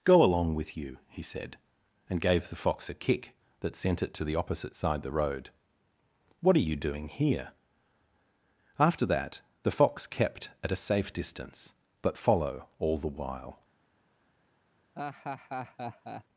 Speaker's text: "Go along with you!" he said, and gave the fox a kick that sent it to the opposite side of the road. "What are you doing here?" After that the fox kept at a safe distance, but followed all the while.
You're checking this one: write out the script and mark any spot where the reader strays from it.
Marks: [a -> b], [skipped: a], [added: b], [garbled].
"Go along with you!" he said, and gave the fox a kick that sent it to the opposite side [skipped: of] the road. "What are you doing here?" After that the fox kept at a safe distance, but [followed -> follow] all the while.